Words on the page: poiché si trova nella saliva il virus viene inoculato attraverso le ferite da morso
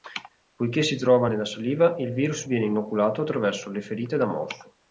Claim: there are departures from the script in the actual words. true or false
false